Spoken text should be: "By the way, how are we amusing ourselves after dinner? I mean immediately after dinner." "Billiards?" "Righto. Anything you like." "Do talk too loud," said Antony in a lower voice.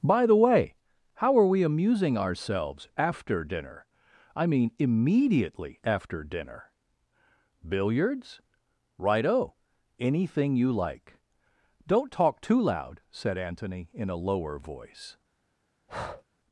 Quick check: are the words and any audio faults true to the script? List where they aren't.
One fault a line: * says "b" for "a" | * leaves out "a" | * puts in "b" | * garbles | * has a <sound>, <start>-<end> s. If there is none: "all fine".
* says "Don't" for "Do"
* has a breath, 15.9-16.2 s